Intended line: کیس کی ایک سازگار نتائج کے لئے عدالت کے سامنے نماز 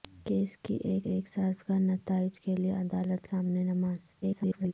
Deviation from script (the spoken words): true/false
true